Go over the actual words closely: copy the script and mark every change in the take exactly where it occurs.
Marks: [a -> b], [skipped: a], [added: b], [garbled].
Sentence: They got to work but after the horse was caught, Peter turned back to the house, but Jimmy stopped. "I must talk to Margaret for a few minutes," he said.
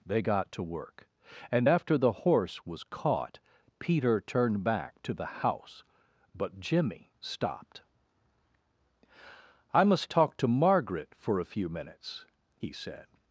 They got to work [but -> and] after the horse was caught, Peter turned back to the house, but Jimmy stopped. "I must talk to Margaret for a few minutes," he said.